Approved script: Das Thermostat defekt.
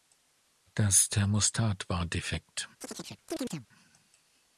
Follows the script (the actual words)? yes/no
no